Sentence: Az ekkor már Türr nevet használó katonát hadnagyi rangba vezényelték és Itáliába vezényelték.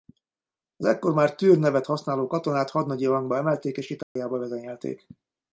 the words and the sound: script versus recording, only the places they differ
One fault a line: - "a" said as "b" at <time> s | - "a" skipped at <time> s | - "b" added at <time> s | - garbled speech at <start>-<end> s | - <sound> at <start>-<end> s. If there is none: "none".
- "vezényelték" said as "emelték" at 3.4 s
- dropout at 4.0-4.2 s